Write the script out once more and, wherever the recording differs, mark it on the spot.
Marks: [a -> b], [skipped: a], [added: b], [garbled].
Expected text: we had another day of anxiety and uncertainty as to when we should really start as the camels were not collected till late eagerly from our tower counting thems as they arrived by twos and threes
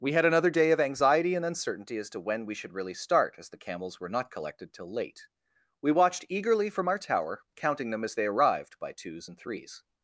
we had another day of anxiety and uncertainty as to when we should really start as the camels were not collected till late [added: we watched] eagerly from our tower counting [thems -> them] as they arrived by twos and threes